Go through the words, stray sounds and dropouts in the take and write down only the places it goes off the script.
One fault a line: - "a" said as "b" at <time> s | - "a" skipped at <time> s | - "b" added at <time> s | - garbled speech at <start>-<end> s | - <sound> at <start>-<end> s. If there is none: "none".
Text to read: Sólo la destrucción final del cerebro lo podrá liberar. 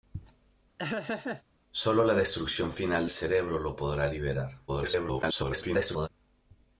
- laugh at 0.8-1.4 s
- "del" skipped at 3.1 s
- garbled speech at 4.7-6.1 s